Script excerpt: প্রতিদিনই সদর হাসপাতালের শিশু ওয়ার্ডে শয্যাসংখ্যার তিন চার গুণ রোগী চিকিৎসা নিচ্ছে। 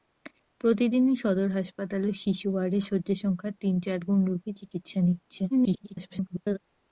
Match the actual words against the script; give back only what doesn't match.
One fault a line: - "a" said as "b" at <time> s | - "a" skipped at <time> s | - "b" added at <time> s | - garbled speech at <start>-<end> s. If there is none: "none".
- garbled speech at 5.5-6.6 s